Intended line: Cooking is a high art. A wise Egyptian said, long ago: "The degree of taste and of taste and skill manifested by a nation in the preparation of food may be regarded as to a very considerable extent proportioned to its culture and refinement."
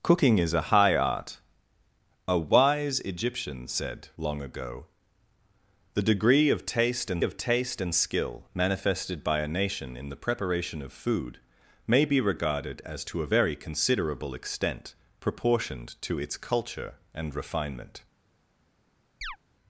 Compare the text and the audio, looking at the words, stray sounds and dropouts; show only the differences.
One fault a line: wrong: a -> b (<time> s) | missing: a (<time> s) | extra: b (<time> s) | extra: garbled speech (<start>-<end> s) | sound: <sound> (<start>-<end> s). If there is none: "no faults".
sound: chirp (19.2-19.4 s)